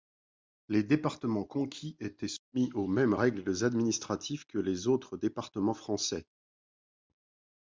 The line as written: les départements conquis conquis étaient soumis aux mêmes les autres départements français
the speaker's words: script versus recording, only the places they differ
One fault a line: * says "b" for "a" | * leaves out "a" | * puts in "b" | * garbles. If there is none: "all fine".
* leaves out "conquis"
* puts in "règles administratives que"